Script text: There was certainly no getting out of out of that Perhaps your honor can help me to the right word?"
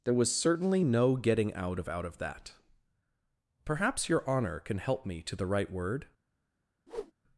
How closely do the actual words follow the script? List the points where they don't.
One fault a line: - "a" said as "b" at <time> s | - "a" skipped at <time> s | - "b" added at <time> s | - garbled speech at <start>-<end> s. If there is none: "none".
none